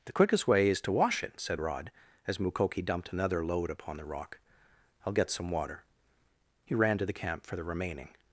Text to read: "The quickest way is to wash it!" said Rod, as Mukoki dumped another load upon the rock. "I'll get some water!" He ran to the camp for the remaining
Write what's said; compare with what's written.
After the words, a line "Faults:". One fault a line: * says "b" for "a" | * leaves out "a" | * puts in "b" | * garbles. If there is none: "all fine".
"The quickest way is to wash it!" said Rod, as Mukoki dumped another load upon the rock. "I'll get some water!" He ran to the camp for the remaining
Faults:
all fine